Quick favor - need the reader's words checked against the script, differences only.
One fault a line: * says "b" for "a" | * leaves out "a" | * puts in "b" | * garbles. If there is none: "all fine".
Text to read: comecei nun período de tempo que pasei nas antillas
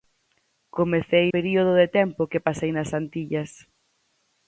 * leaves out "nun"